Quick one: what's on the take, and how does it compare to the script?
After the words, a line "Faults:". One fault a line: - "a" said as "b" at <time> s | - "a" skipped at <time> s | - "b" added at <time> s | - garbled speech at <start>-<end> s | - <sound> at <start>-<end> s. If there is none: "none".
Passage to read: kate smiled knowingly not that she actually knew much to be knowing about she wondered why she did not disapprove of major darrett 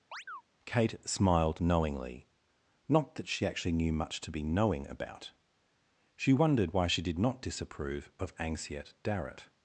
kate smiled knowingly not that she actually knew much to be knowing about she wondered why she did not disapprove of anxiet darrett
Faults:
- chirp at 0.1-0.4 s
- "major" said as "anxiet" at 8.4 s